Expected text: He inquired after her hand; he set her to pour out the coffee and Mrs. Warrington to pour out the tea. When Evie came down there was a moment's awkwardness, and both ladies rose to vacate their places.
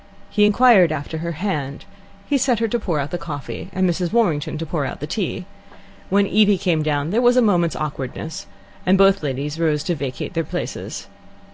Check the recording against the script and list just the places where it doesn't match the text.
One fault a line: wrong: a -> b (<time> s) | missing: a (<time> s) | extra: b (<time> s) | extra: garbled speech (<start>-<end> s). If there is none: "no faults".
no faults